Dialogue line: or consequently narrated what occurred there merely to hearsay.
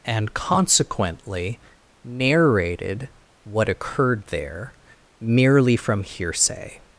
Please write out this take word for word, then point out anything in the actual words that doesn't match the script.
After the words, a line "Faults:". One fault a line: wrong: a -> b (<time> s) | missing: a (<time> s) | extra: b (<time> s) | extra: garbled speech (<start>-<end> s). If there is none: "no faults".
and consequently narrated what occurred there merely from hearsay.
Faults:
wrong: or -> and (0.1 s)
wrong: to -> from (5.7 s)